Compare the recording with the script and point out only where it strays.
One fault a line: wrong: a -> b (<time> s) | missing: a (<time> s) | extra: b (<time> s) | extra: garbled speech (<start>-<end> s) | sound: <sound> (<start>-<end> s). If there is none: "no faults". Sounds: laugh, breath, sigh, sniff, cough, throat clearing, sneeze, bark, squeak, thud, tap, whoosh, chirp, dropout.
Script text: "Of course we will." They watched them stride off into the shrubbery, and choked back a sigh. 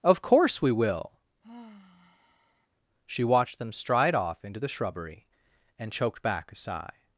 sound: sigh (1.4-2.7 s)
wrong: They -> She (3.1 s)